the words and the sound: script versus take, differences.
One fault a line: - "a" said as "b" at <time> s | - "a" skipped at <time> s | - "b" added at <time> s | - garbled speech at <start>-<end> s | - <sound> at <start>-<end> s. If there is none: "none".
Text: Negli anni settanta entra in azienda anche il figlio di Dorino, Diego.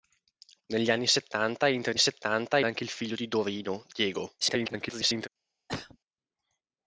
- "azienda" said as "settanta" at 2.0 s
- garbled speech at 4.4-5.3 s
- cough at 5.7-6.0 s